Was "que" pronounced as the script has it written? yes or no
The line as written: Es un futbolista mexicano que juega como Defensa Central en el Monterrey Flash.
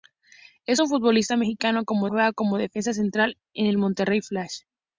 no